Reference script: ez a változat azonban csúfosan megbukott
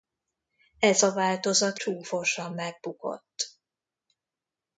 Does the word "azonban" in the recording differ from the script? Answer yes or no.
yes